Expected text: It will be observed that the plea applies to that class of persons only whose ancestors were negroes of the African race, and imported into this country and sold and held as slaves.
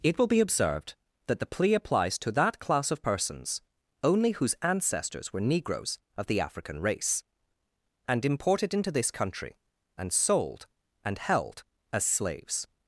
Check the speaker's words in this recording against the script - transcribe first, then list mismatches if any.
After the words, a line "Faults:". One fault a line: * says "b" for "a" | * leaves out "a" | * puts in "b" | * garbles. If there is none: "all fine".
It will be observed that the plea applies to that class of persons only whose ancestors were negroes of the African race, and imported into this country and sold and held as slaves.
Faults:
all fine